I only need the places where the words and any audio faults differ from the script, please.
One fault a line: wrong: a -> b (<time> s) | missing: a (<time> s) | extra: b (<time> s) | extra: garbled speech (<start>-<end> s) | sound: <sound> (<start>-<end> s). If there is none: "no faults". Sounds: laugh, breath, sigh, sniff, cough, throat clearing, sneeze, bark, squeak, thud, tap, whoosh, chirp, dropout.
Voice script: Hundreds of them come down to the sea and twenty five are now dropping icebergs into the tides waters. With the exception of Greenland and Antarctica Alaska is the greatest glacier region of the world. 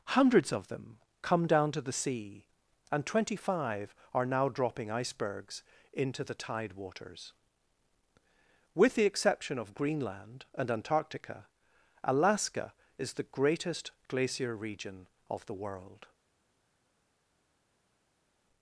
wrong: tides -> tide (6.3 s)